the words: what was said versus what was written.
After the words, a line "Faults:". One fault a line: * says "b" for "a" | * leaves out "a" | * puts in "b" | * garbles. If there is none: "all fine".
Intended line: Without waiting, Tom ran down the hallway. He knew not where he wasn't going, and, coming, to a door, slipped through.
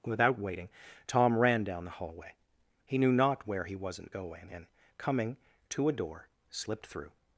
Without waiting, Tom ran down the hallway. He knew not where he wasn't going, and, coming, to a door, slipped through.
Faults:
all fine